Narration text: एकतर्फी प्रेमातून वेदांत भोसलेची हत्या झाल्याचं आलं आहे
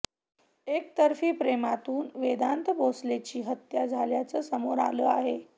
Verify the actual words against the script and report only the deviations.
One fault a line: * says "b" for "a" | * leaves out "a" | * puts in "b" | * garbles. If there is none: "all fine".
* puts in "समोर"